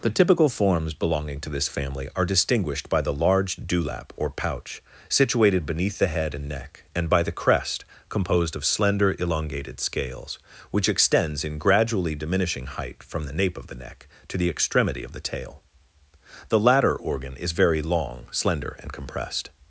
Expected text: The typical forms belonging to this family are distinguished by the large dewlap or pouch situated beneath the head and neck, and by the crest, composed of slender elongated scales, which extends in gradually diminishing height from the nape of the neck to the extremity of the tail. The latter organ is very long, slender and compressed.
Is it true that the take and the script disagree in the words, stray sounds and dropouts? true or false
false